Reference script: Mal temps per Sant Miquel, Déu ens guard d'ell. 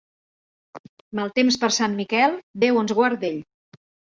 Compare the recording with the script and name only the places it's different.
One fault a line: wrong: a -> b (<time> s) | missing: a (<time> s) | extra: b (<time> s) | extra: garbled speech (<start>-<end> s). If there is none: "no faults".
no faults